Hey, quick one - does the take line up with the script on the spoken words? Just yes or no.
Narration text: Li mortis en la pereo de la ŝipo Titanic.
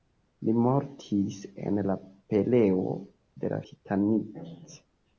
no